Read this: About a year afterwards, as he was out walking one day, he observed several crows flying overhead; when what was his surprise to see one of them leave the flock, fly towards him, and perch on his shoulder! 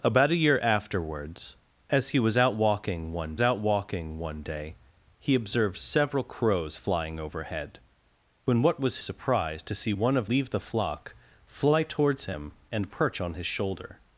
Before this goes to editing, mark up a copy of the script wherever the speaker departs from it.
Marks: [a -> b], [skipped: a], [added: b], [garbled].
About a year afterwards, as he was out walking one [added: out walking one] day, he observed several crows flying overhead; when what was [skipped: his] surprise to see one of [skipped: them] leave the flock, fly towards him, and perch on his shoulder!